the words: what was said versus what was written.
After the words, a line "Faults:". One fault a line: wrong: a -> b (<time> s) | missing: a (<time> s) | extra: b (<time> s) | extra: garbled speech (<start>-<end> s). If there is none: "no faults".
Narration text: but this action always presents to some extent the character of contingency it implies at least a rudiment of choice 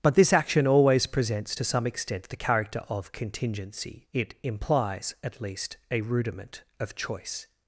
but this action always presents to some extent the character of contingency it implies at least a rudiment of choice
Faults:
no faults